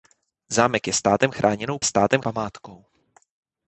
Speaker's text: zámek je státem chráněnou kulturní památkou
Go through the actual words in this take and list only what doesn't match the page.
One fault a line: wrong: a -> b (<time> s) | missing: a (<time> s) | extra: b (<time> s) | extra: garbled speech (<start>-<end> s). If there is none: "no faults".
wrong: kulturní -> státem (1.8 s)